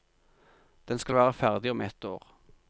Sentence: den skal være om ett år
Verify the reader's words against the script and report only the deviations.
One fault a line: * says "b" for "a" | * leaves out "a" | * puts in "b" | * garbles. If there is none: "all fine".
* puts in "ferdig"